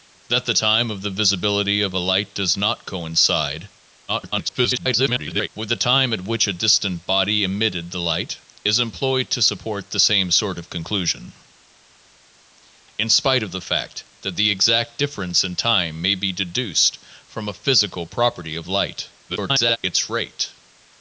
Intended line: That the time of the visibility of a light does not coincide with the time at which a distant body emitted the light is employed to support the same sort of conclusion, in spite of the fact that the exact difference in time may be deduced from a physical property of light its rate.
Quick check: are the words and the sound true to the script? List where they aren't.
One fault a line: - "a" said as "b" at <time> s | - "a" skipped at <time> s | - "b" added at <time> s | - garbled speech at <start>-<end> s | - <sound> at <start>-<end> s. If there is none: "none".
- garbled speech at 4.1-5.5 s
- garbled speech at 19.3-19.8 s